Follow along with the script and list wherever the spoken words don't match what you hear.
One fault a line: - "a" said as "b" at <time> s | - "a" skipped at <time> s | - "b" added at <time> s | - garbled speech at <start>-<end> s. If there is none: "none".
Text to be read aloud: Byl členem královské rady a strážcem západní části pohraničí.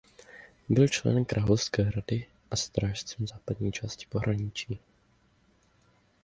none